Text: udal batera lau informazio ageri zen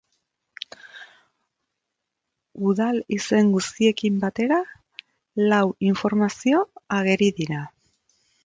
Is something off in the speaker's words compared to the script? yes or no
yes